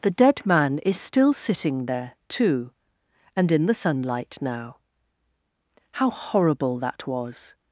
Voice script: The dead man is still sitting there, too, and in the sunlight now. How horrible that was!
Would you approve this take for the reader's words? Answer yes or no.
yes